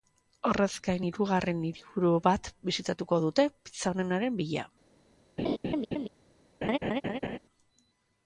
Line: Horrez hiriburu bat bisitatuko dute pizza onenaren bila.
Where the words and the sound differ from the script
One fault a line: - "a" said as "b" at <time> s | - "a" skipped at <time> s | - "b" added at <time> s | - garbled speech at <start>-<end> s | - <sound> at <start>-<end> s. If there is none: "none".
- "gain hirugarren" added at 0.9 s
- laugh at 5.4-6.1 s
- laugh at 6.6-7.4 s